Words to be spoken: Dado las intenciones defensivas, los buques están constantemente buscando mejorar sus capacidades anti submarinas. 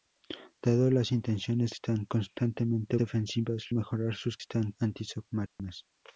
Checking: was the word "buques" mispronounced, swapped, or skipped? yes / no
yes